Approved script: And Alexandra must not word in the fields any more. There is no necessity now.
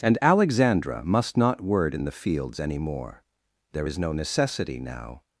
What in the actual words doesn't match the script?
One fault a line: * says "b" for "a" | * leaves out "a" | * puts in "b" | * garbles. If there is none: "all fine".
all fine